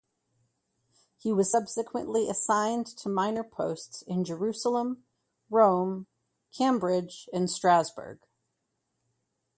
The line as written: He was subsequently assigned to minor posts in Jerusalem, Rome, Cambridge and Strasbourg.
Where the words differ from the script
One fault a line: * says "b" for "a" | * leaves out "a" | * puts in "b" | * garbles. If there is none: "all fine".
all fine